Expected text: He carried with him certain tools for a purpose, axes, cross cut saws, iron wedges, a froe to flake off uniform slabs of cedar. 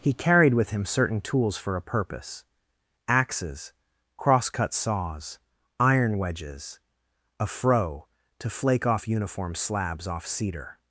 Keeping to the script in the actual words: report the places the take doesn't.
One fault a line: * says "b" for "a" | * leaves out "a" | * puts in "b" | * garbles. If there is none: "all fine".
* says "off" for "of"